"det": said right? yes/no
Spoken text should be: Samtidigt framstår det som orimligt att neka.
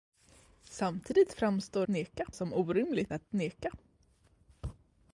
no